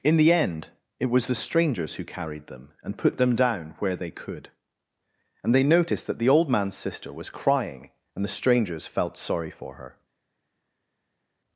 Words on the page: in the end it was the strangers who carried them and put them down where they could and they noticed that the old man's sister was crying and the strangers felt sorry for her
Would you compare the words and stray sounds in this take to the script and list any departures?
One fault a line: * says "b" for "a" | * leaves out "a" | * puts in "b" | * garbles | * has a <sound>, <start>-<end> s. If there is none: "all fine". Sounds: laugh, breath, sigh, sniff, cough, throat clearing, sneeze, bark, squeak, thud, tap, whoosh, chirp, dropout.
all fine